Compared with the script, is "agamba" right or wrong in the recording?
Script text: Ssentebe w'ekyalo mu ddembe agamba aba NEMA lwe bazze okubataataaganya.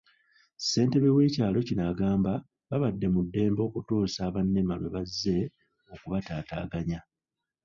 wrong